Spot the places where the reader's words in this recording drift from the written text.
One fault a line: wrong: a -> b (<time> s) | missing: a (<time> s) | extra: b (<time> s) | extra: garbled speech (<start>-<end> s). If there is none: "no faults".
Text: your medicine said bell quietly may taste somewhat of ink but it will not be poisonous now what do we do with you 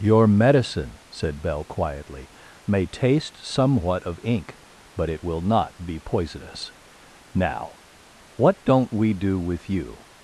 wrong: do -> don't (8.6 s)